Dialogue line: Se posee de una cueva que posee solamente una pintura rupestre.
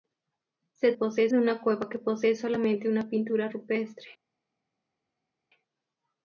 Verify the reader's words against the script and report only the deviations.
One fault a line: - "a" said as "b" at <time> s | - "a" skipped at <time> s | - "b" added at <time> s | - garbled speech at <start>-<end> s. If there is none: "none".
none